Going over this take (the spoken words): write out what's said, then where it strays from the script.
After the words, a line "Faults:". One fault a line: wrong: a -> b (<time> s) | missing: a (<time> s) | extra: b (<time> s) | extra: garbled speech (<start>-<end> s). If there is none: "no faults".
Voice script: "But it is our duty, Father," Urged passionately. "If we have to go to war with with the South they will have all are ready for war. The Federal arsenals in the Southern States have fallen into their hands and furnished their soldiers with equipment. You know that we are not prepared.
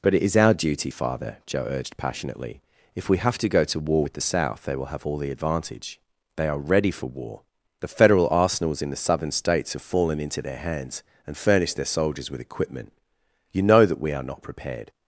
"But it is our duty, Father," Joe urged passionately. "If we have to go to war with the South they will have all the advantage. They are ready for war. The Federal arsenals in the Southern States have fallen into their hands and furnished their soldiers with equipment. You know that we are not prepared.
Faults:
extra: Joe (1.5 s)
missing: with (4.1 s)
extra: the advantage They (5.2 s)